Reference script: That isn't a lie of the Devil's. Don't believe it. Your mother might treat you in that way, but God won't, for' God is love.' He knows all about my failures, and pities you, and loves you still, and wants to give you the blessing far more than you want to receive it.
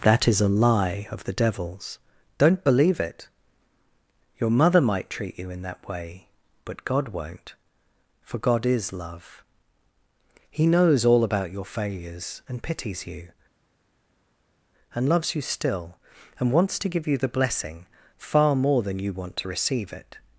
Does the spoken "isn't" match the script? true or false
false